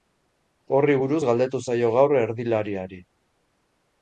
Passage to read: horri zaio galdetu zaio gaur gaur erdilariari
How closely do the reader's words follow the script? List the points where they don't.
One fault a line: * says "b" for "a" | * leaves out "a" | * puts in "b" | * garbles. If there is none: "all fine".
* says "buruz" for "zaio"
* leaves out "gaur"